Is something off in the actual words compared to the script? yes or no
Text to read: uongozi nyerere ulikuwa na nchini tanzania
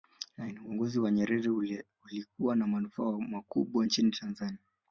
yes